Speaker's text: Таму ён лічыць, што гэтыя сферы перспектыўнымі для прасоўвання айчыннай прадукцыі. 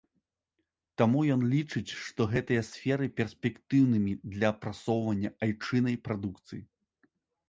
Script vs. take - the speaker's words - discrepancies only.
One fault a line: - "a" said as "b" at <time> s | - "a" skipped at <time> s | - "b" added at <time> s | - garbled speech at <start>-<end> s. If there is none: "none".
none